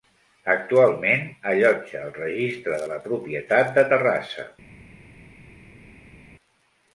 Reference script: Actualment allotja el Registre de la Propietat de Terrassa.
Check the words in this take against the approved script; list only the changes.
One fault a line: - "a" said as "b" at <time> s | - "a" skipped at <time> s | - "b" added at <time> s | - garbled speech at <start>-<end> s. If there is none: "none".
none